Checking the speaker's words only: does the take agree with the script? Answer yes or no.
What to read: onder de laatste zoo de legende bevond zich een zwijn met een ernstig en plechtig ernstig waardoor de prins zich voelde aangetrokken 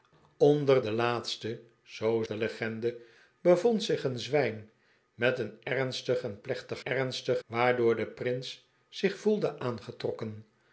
yes